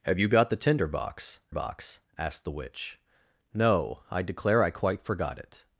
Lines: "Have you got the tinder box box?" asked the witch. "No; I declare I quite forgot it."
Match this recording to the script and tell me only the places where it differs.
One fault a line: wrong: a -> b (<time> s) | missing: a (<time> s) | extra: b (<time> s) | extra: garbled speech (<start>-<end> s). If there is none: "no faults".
no faults